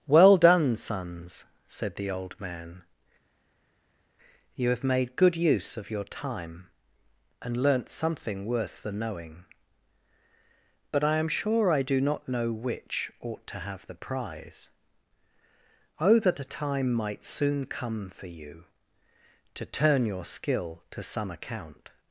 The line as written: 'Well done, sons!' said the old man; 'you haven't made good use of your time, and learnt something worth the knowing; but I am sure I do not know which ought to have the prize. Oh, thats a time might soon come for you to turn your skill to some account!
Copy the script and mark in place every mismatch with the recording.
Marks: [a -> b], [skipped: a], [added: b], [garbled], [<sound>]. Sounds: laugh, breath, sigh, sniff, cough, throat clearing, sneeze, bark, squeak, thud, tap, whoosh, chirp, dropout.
'Well done, sons!' said the old man; 'you [haven't -> have] made good use of your time, and learnt something worth the knowing; but I am sure I do not know which ought to have the prize. Oh, [thats -> that] a time might soon come for you to turn your skill to some account!